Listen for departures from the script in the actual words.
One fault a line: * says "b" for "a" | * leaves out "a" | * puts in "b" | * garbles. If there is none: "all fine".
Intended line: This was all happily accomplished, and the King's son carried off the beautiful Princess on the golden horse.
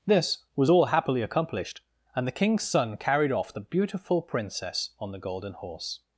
all fine